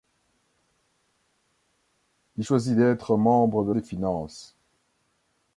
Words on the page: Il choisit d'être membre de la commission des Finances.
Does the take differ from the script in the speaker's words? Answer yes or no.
yes